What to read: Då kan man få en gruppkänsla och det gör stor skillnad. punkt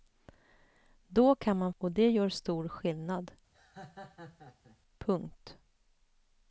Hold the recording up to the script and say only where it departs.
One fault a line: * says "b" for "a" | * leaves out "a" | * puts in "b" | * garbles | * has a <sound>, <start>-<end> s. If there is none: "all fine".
* leaves out "få en gruppkänsla"
* has a laugh, 3.5-4.8 s